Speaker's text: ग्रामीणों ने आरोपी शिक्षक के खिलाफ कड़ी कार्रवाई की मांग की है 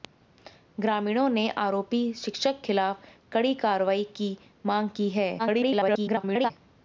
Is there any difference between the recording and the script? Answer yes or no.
yes